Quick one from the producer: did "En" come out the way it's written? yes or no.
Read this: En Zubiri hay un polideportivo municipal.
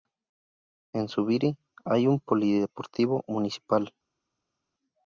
yes